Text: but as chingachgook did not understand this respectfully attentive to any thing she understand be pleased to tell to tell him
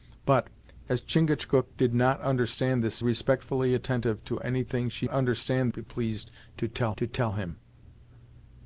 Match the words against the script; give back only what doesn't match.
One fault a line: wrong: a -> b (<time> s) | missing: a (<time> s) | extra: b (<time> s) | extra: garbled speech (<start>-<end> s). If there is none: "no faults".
no faults